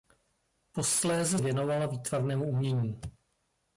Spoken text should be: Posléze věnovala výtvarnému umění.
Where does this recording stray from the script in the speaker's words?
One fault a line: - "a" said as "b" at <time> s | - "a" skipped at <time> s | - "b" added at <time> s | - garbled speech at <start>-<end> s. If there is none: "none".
none